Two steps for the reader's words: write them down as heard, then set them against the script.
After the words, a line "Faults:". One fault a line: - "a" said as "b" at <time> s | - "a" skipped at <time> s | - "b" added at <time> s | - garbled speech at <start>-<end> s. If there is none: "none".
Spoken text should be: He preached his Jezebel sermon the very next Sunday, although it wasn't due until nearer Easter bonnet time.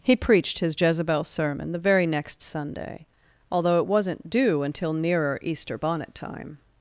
He preached his Jezebel sermon the very next Sunday, although it wasn't due until nearer Easter bonnet time.
Faults:
none